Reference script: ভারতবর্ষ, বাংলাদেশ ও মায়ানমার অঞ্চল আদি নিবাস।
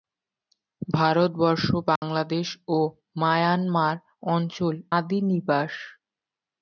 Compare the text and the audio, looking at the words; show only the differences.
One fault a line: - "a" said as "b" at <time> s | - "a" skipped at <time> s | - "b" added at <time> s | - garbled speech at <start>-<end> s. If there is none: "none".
none